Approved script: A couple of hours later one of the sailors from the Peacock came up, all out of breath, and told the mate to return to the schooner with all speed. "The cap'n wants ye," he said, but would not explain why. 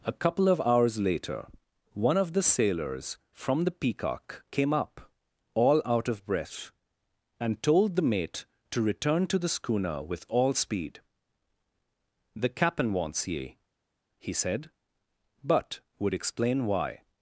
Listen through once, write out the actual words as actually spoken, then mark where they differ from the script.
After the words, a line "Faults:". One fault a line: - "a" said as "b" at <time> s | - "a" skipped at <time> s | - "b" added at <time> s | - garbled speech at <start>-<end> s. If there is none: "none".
A couple of hours later one of the sailors from the Peacock came up, all out of breath, and told the mate to return to the schooner with all speed. "The cap'n wants ye," he said, but would explain why.
Faults:
- "not" skipped at 16.1 s